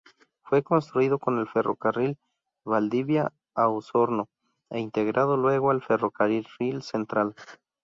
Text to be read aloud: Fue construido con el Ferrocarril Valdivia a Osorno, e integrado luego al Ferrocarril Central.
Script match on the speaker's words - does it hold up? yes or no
yes